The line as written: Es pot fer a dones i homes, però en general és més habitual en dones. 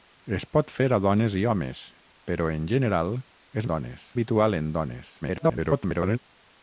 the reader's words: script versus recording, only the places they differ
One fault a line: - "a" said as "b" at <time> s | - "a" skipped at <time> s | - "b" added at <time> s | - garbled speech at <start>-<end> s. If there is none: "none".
- "més" said as "dones" at 3.7 s
- garbled speech at 5.2-6.2 s